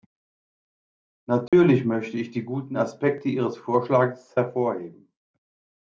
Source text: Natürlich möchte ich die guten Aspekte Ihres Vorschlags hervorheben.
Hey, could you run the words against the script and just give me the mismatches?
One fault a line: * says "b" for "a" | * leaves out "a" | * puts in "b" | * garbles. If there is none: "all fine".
all fine